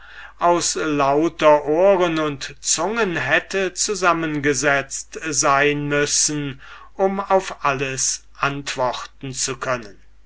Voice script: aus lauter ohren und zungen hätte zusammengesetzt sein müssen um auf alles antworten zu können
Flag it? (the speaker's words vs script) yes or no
no